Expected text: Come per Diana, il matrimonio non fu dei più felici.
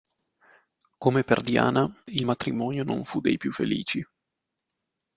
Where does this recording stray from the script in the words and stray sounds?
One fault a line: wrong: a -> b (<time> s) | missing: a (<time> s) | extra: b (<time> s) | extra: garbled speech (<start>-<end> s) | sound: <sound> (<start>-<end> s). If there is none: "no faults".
no faults